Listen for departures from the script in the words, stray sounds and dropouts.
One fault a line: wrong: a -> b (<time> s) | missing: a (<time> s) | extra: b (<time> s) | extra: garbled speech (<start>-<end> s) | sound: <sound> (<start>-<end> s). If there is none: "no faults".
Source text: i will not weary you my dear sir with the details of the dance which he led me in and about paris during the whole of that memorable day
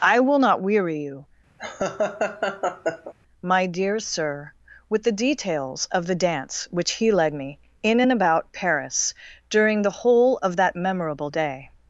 sound: laugh (1.6-3.1 s)